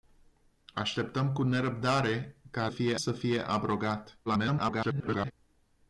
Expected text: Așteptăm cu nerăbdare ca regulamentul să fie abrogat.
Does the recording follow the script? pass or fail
fail